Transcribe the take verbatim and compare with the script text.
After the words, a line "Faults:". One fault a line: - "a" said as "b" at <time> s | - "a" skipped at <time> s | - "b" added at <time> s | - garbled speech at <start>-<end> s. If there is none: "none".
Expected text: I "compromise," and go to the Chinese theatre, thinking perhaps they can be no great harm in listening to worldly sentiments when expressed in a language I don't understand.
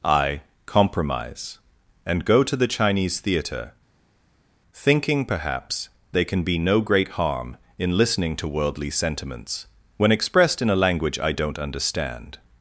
I "compromise," and go to the Chinese theatre, thinking perhaps they can be no great harm in listening to worldly sentiments when expressed in a language I don't understand.
Faults:
none